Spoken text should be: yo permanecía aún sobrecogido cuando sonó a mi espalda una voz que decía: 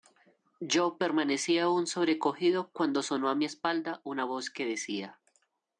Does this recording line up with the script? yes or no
yes